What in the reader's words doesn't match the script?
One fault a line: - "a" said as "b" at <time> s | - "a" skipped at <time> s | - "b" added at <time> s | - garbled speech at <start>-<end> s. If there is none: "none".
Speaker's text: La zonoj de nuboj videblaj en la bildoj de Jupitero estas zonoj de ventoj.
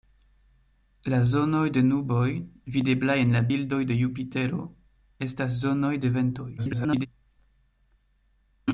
- garbled speech at 6.6-7.1 s